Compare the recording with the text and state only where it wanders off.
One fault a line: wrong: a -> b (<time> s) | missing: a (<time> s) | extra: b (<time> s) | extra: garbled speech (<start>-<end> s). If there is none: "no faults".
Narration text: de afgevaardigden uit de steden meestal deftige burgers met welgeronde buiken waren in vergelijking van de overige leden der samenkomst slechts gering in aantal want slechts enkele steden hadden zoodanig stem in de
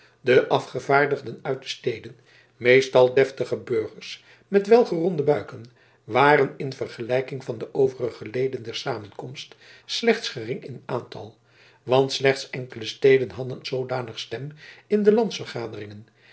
no faults